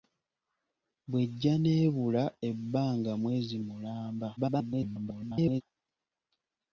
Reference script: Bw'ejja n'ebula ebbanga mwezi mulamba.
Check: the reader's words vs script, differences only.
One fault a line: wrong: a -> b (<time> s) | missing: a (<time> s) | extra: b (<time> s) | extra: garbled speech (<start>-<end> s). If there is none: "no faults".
extra: garbled speech (4.4-5.6 s)